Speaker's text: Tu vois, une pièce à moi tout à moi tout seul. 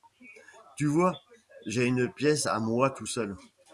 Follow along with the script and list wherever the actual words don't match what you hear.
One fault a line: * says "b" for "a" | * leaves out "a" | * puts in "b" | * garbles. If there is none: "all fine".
* puts in "j'ai"
* leaves out "à moi tout"